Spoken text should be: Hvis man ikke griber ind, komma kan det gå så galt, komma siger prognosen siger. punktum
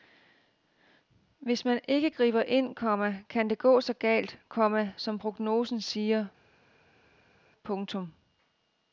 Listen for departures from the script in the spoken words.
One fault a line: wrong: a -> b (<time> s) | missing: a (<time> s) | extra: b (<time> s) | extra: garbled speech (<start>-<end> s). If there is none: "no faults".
wrong: siger -> som (5.0 s)